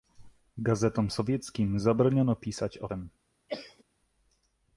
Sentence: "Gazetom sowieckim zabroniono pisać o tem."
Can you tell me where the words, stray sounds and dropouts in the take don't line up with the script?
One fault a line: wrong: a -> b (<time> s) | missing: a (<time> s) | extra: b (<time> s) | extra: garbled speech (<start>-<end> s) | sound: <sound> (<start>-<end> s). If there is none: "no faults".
sound: cough (3.5-3.8 s)